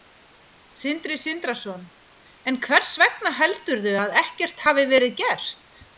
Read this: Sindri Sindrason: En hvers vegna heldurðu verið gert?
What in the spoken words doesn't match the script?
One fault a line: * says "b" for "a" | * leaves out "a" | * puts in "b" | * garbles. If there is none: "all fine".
* puts in "að ekkert hafi"